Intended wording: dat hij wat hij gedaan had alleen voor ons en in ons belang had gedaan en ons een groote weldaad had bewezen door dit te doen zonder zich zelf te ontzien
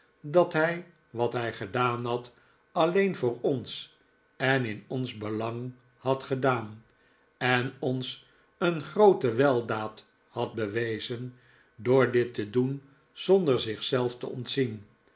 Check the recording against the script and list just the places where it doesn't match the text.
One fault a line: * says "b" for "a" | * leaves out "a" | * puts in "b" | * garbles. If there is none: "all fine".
all fine